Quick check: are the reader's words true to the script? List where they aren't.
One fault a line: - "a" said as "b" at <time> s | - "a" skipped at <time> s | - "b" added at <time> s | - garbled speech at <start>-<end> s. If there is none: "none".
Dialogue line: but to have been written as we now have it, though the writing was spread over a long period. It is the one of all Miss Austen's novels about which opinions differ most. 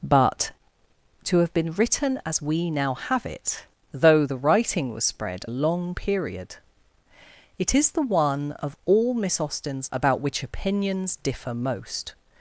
- "over" skipped at 5.5 s
- "novels" skipped at 9.9 s